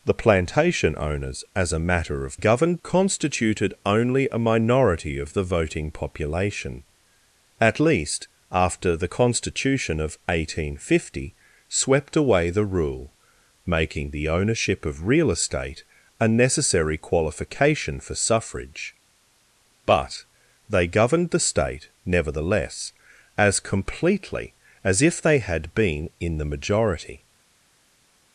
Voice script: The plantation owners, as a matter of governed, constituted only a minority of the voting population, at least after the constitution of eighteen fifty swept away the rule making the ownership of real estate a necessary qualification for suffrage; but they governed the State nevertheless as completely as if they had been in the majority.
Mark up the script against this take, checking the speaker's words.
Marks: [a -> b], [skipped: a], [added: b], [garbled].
The plantation owners, as a matter of governed, constituted only a minority of the voting population, at least after the constitution of eighteen fifty swept away the rule making the ownership of real estate a necessary qualification for suffrage; but they governed the State nevertheless as completely as if they had been in the majority.